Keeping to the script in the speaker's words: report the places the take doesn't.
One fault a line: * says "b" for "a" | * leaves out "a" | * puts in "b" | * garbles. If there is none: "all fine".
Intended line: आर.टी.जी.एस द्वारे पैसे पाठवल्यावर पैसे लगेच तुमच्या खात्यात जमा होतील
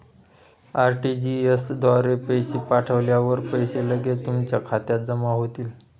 all fine